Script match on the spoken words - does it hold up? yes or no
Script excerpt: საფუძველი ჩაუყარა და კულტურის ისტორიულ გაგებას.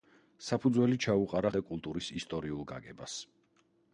yes